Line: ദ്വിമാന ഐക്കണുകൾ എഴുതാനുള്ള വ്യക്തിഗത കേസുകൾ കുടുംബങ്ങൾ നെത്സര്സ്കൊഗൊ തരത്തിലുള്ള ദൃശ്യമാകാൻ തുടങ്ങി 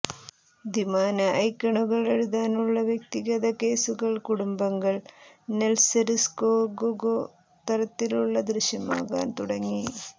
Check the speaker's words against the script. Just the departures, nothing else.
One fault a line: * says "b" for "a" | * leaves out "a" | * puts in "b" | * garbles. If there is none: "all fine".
all fine